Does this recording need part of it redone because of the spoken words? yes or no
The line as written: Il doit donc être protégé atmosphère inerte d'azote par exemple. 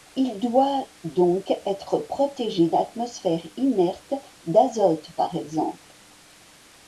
no